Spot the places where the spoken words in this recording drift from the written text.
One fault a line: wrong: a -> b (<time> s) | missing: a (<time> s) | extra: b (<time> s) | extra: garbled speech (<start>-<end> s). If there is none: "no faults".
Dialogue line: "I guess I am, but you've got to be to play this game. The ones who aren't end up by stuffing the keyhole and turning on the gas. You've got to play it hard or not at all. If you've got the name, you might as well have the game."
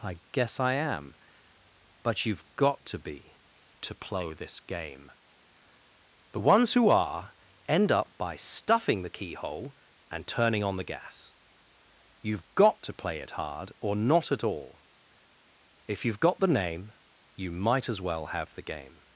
wrong: aren't -> are (6.9 s)